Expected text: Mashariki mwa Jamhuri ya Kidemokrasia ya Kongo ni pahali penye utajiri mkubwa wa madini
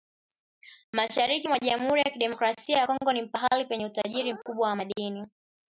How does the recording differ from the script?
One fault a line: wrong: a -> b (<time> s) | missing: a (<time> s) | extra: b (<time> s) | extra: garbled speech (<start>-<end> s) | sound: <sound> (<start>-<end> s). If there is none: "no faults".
no faults